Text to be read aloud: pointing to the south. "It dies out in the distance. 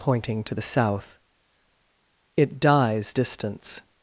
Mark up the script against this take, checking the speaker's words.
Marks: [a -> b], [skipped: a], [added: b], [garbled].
pointing to the south. "It dies [skipped: out in the] distance.